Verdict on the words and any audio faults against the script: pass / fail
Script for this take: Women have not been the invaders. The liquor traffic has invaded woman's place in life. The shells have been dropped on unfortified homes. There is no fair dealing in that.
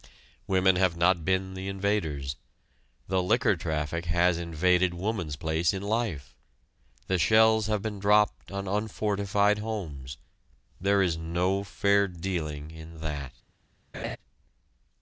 fail